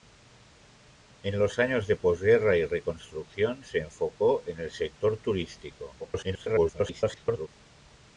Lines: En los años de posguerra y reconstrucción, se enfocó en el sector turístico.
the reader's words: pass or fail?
fail